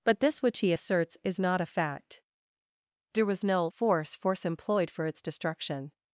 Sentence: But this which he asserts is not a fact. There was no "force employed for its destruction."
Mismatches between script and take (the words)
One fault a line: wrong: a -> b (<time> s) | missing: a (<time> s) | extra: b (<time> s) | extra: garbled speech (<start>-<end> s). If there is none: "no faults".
extra: force (4.1 s)